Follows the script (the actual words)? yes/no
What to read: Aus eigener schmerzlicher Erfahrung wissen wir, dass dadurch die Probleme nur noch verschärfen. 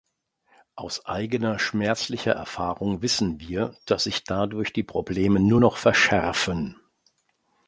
no